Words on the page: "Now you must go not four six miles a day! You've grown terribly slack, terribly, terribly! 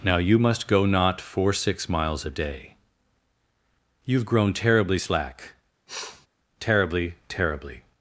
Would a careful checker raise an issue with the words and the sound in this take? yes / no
yes